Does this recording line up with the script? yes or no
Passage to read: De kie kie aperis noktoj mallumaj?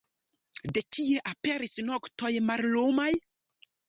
no